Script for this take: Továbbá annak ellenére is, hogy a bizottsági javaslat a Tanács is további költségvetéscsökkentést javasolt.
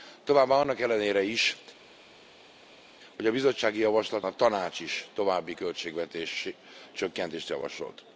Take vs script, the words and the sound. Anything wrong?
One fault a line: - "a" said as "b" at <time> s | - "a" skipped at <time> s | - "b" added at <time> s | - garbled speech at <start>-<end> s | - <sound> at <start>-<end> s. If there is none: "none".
none